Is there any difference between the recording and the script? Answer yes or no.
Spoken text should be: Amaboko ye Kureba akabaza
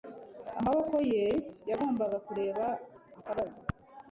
yes